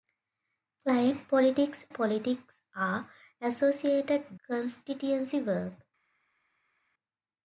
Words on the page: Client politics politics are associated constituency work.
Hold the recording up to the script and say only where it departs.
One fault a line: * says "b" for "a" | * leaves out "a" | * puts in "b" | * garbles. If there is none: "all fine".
all fine